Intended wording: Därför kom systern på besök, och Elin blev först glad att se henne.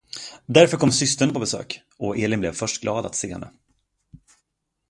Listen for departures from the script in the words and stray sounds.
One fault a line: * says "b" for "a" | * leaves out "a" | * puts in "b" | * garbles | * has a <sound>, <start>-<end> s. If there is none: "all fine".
all fine